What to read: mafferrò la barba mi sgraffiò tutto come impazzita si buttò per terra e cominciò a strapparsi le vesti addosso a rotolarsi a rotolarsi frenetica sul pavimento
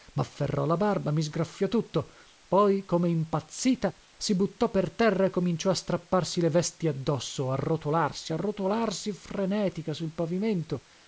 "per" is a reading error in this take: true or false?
false